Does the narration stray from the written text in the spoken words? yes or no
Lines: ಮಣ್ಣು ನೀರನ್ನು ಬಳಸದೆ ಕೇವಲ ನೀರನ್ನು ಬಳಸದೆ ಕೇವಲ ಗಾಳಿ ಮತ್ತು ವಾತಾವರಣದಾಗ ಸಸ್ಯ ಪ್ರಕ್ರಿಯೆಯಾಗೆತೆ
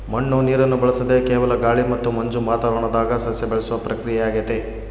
yes